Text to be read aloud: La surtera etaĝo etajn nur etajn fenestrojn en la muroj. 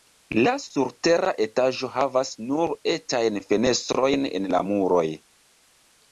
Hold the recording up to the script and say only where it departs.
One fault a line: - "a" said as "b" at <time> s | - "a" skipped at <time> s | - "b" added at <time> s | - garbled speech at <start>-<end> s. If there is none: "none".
- "etajn" said as "havas" at 2.0 s